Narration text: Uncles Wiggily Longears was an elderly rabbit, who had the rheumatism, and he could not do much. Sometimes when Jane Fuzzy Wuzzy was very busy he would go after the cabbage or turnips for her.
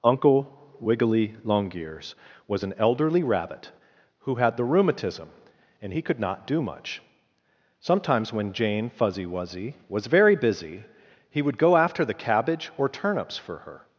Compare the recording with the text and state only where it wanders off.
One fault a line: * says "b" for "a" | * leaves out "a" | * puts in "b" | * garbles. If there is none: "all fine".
* says "Uncle" for "Uncles"